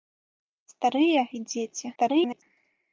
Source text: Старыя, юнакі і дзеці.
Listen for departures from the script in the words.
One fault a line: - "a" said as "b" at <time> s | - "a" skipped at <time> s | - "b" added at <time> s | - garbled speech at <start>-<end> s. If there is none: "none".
- "юнакі" skipped at 1.2 s
- garbled speech at 2.0-2.4 s